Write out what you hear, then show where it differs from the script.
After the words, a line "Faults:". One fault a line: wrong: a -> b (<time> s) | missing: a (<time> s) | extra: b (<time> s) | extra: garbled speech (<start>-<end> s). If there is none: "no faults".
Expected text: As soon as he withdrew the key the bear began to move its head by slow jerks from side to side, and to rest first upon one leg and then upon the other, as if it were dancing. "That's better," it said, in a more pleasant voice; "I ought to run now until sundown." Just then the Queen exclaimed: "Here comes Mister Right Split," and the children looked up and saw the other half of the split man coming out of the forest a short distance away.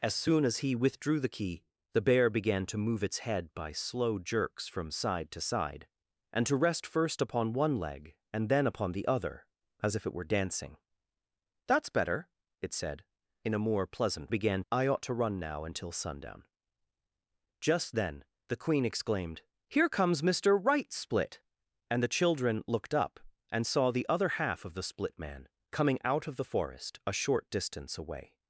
As soon as he withdrew the key the bear began to move its head by slow jerks from side to side, and to rest first upon one leg and then upon the other, as if it were dancing. "That's better," it said, in a more pleasant began; "I ought to run now until sundown." Just then the Queen exclaimed: "Here comes Mister Right Split," and the children looked up and saw the other half of the split man coming out of the forest a short distance away.
Faults:
wrong: voice -> began (14.3 s)